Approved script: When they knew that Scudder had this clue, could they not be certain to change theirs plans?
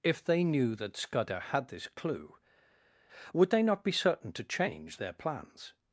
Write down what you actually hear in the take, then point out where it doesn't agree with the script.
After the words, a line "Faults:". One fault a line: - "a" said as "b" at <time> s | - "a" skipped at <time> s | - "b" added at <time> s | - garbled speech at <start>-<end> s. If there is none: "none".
If they knew that Scudder had this clue, would they not be certain to change their plans?
Faults:
- "When" said as "If" at 0.0 s
- "could" said as "would" at 3.3 s
- "theirs" said as "their" at 5.0 s